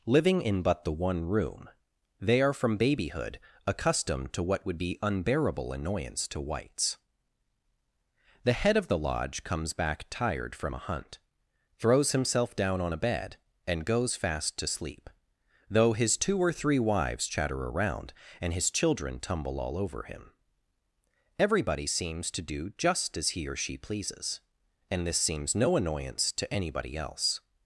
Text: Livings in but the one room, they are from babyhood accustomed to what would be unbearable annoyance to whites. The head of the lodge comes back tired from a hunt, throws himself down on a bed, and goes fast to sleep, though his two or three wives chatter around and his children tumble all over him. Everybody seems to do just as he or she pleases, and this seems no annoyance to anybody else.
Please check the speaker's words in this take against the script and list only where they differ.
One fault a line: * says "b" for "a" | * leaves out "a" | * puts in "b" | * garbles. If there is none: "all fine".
* says "Living" for "Livings"